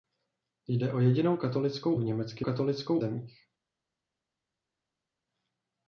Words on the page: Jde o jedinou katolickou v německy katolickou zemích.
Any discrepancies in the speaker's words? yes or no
no